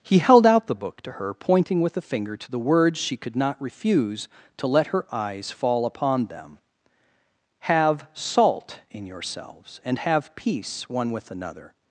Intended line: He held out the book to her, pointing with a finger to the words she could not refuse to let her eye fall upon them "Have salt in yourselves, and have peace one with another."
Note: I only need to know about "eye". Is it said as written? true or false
false